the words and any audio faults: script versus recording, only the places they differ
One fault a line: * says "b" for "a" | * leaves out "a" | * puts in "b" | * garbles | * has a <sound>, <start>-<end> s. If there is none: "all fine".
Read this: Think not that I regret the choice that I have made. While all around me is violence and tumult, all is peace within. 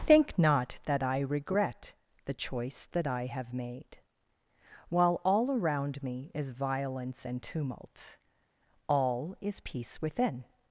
all fine